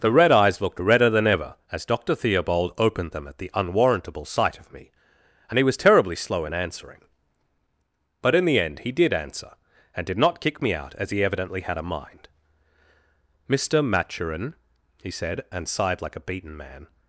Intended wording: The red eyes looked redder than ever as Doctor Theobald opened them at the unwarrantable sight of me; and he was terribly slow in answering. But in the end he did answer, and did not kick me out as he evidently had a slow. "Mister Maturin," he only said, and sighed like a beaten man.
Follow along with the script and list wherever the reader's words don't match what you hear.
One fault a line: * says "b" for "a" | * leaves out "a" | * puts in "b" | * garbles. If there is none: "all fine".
* says "mind" for "slow"
* leaves out "only"